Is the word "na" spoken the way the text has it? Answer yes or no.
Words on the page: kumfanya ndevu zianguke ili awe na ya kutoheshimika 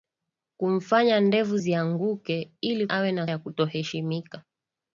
yes